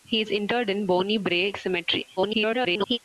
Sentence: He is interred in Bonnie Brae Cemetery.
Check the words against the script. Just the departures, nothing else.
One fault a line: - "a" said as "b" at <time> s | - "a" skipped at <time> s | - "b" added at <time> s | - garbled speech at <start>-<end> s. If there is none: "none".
- garbled speech at 2.2-3.0 s